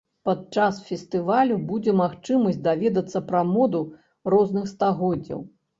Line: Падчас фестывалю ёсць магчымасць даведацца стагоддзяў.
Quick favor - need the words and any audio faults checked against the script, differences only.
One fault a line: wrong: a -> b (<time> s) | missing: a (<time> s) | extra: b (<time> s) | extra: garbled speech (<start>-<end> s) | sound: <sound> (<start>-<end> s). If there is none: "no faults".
wrong: ёсць -> будзе (1.7 s)
extra: пра моду розных (3.3 s)